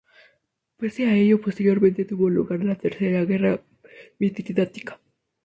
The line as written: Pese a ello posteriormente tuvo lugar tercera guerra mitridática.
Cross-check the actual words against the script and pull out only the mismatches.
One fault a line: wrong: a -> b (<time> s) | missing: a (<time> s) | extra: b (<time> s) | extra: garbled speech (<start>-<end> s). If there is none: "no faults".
extra: la (2.6 s)